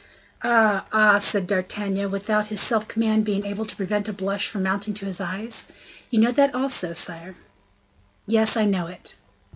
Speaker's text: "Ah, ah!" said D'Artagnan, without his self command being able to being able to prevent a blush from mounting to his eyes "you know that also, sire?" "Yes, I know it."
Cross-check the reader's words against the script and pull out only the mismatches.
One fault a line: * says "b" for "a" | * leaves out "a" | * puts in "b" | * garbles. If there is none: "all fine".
* leaves out "being able to"